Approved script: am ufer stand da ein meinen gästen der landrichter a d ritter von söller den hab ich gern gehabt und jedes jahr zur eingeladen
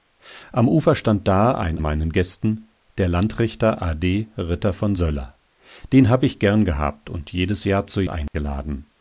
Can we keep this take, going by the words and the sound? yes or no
no